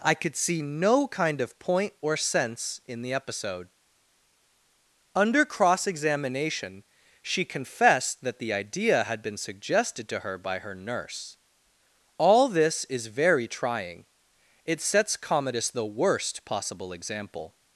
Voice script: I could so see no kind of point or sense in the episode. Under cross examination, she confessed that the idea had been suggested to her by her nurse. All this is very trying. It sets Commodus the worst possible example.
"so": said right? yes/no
no